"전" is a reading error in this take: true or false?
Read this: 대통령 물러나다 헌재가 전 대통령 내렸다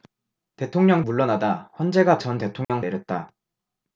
false